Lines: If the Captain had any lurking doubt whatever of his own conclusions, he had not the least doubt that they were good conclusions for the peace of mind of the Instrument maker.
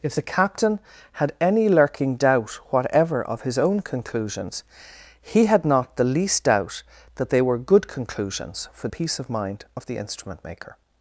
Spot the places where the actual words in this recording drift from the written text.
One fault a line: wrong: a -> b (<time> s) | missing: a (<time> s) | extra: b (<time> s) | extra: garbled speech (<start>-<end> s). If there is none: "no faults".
missing: the (8.9 s)